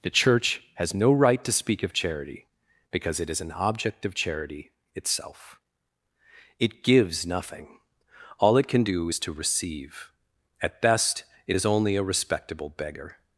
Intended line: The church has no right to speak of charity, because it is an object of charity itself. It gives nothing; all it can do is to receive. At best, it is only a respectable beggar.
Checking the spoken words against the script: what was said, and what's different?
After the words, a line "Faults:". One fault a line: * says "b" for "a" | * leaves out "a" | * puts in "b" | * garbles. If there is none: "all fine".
The church has no right to speak of charity, because it is an object of charity itself. It gives nothing; all it can do is to receive. At best, it is only a respectable beggar.
Faults:
all fine